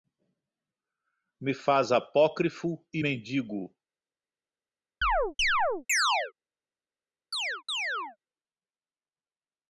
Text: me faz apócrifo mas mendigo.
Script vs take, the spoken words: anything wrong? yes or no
yes